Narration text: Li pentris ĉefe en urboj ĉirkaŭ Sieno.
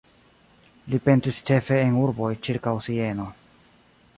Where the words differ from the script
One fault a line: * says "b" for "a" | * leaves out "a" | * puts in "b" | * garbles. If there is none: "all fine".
all fine